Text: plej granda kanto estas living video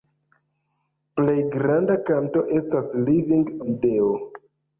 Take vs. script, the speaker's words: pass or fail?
pass